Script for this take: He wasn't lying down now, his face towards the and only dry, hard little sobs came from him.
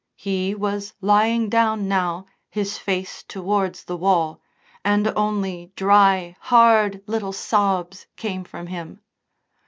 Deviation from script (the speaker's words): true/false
true